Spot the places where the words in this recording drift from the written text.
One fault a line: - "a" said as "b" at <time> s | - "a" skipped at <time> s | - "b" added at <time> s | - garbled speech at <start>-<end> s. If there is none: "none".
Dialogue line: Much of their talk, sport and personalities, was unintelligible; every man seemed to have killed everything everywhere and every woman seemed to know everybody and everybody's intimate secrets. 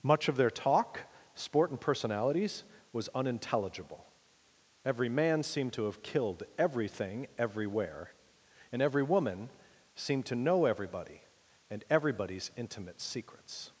none